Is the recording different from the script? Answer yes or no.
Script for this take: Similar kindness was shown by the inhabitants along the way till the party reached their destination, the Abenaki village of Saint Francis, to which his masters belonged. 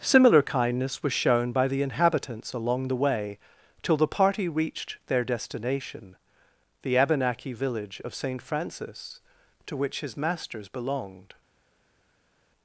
no